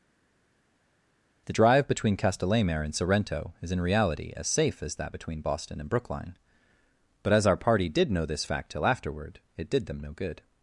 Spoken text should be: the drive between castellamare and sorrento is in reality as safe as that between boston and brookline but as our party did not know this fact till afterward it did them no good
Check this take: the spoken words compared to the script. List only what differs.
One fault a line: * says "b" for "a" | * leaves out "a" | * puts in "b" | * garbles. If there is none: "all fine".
* leaves out "not"